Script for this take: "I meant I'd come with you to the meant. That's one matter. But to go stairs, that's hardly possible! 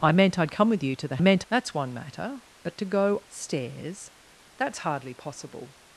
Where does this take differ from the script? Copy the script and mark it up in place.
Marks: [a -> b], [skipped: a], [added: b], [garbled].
"I meant I'd come with you to the meant. That's one matter. But to go stairs, that's hardly possible!